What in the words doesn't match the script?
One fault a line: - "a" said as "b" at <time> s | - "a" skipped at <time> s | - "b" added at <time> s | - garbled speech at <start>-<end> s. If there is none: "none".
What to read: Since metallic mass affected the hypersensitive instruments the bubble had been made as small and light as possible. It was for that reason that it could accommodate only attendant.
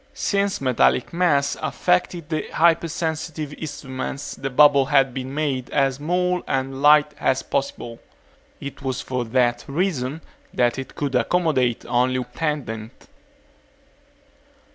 none